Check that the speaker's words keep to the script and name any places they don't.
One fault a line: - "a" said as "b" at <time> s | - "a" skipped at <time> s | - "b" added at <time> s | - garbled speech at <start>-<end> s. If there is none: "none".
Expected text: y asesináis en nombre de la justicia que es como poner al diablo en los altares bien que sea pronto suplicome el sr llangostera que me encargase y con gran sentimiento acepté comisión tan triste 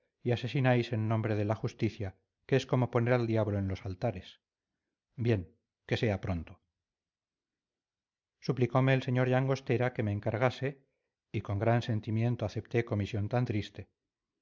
none